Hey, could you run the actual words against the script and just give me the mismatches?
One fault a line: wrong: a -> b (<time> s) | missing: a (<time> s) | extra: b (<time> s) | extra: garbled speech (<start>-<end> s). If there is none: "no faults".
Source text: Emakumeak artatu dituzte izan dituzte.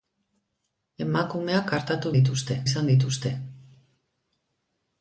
no faults